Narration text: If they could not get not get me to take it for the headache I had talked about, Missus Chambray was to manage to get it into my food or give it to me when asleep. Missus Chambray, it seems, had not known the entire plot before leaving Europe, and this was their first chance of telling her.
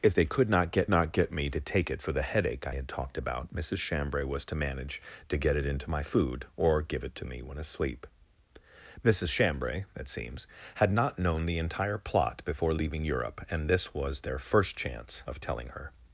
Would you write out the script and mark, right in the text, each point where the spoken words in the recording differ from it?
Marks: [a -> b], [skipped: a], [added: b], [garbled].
If they could not get not get me to take it for the headache I had talked about, Missus Chambray was to manage to get it into my food or give it to me when asleep. Missus Chambray, it seems, had not known the entire plot before leaving Europe, and this was their first chance of telling her.